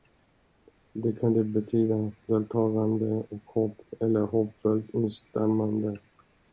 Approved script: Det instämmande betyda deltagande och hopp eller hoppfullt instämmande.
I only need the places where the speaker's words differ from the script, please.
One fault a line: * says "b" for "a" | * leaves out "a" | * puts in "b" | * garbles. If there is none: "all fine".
* says "kunde" for "instämmande"